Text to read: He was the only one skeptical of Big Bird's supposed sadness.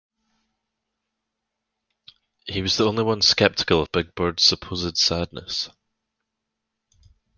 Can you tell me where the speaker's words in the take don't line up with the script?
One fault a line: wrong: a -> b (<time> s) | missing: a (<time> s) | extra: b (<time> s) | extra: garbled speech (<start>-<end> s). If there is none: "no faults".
no faults